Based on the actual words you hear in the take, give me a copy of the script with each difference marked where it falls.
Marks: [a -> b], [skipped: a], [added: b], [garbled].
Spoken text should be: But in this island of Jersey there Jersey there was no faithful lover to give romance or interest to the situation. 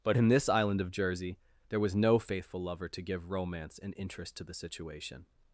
But in this island of Jersey there [skipped: Jersey there] was no faithful lover to give romance [or -> and] interest to the situation.